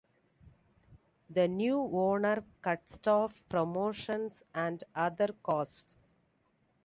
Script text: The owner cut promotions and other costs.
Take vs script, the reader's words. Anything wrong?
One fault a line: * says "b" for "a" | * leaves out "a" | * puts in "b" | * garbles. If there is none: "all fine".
* puts in "new"
* puts in "staff"